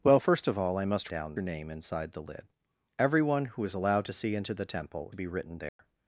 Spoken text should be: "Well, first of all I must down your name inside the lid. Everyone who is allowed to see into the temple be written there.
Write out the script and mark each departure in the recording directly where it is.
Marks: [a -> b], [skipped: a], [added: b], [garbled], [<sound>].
"Well, first of all I must down your name inside the lid. Everyone who is allowed to see into the temple be written there. [dropout]